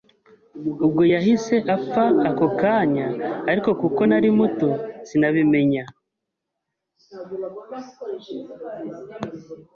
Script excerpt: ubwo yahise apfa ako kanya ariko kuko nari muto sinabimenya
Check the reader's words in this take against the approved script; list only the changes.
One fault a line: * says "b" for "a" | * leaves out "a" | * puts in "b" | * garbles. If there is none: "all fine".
all fine